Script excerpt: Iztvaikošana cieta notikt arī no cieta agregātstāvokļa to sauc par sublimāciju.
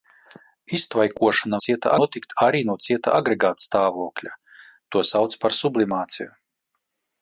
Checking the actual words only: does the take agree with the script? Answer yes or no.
yes